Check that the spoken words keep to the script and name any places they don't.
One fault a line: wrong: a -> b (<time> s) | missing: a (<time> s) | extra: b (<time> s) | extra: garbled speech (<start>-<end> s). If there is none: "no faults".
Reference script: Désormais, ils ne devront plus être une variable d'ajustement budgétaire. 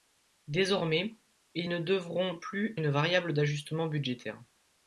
missing: être (2.7 s)